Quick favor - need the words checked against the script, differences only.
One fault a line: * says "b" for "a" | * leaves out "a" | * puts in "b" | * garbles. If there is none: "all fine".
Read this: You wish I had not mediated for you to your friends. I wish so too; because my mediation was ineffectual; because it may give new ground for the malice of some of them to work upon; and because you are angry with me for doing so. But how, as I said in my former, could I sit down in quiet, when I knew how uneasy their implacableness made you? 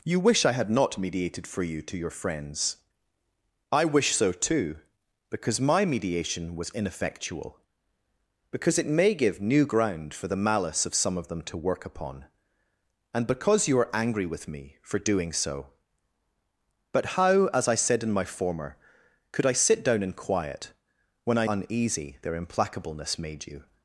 * leaves out "knew how"